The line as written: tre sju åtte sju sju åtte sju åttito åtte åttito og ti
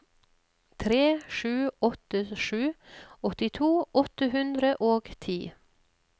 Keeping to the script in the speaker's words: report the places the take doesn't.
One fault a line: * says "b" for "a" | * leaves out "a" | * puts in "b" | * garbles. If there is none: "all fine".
* leaves out "sju åtte sju"
* says "hundre" for "åttito"